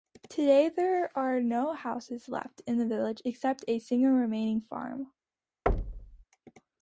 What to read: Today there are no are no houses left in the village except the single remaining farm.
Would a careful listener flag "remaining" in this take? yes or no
no